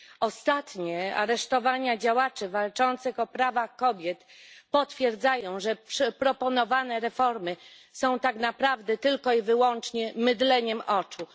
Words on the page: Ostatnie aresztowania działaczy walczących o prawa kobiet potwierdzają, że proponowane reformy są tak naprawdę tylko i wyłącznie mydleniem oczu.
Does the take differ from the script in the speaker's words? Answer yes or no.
no